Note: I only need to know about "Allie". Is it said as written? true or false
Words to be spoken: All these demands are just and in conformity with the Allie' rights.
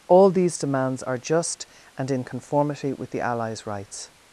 false